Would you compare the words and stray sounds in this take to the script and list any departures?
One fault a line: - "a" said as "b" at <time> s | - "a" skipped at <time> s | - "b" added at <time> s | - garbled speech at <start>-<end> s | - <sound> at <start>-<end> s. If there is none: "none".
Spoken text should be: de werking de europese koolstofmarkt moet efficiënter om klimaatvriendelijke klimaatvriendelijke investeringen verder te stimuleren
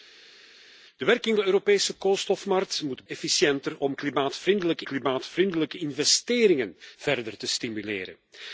none